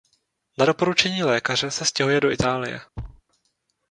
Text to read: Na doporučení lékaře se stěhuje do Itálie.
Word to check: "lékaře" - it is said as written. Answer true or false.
true